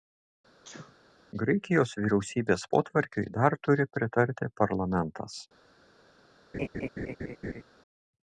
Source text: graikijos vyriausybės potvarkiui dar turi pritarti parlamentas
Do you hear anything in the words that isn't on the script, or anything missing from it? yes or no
no